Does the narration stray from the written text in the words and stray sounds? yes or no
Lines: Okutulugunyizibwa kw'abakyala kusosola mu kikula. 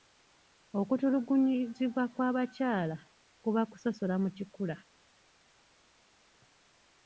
yes